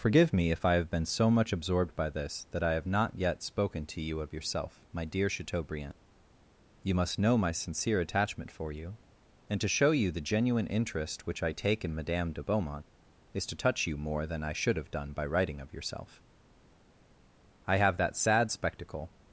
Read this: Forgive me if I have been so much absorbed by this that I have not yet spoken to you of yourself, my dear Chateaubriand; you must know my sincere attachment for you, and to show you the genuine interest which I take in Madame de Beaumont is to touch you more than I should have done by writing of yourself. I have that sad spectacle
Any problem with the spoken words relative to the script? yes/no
no